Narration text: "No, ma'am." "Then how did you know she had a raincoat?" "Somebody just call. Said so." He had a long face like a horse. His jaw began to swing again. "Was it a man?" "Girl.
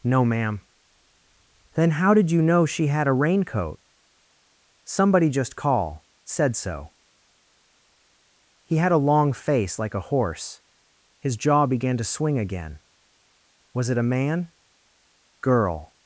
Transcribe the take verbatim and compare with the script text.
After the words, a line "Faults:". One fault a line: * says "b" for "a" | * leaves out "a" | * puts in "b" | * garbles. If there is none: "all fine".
"No, ma'am." "Then how did you know she had a raincoat?" "Somebody just call. Said so." He had a long face like a horse. His jaw began to swing again. "Was it a man?" "Girl.
Faults:
all fine